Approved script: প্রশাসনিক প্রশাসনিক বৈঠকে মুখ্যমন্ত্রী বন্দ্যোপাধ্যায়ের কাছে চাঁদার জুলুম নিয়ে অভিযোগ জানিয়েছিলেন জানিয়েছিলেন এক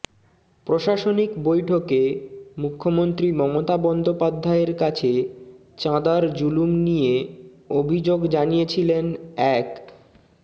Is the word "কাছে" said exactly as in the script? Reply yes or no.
yes